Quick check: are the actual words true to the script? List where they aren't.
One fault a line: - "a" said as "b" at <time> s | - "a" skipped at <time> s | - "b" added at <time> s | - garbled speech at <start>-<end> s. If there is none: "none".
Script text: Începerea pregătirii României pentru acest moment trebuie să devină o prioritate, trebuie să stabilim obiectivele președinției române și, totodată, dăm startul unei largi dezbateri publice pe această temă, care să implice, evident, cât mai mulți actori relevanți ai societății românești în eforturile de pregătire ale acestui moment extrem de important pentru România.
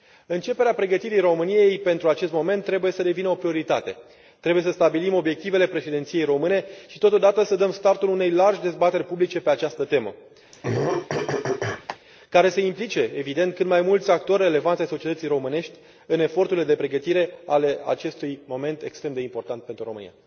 - "să" added at 7.4 s